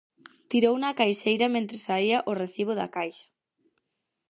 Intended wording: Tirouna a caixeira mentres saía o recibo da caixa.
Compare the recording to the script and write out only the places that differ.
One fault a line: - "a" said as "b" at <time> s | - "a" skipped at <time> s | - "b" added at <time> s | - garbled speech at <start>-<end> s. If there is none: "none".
none